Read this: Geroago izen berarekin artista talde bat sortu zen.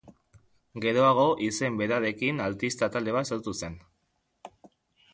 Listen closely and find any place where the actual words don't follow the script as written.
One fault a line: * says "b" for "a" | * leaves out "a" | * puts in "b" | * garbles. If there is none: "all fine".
all fine